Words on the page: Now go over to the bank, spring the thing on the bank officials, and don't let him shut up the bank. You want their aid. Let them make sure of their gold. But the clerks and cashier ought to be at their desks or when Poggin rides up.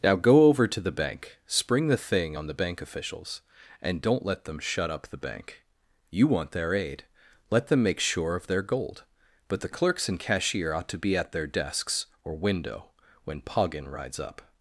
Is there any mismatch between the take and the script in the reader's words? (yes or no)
yes